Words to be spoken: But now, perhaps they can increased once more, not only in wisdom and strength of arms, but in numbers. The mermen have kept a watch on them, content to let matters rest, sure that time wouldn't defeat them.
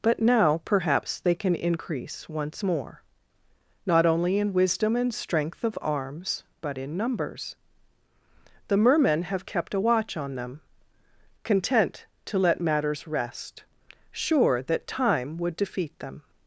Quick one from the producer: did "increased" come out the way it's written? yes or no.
no